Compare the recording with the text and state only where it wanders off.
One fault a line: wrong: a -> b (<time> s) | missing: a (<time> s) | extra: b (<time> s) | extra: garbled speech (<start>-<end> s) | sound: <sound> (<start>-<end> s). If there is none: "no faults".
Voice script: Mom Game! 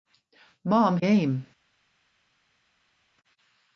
no faults